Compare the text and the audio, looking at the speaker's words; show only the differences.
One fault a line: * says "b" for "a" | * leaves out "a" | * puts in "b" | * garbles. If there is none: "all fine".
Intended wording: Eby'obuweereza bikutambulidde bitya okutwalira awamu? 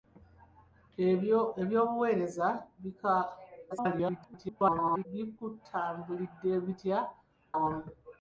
* garbles
* leaves out "okutwalira"